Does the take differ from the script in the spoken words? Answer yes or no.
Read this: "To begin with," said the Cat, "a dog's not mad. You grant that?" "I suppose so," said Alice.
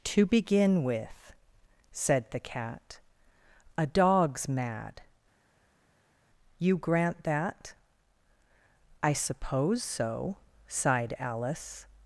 yes